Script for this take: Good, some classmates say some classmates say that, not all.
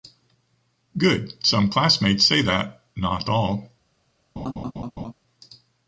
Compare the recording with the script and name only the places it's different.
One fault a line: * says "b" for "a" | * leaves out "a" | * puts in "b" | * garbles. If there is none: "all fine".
* leaves out "some classmates say"